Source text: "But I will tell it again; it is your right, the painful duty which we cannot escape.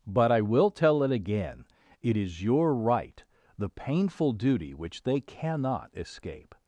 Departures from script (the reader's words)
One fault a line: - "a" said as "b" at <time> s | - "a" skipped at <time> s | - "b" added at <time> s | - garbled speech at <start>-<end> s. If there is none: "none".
- "we" said as "they" at 5.0 s